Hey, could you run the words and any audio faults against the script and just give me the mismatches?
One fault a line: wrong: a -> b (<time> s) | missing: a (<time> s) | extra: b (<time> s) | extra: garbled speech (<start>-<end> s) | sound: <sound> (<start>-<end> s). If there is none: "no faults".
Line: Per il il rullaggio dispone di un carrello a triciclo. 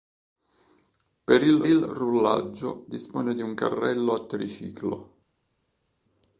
no faults